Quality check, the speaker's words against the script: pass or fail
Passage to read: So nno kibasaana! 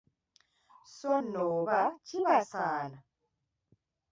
fail